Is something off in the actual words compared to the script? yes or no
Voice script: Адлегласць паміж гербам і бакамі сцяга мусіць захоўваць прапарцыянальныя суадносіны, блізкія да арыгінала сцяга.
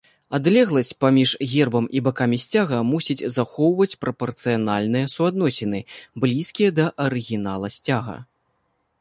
no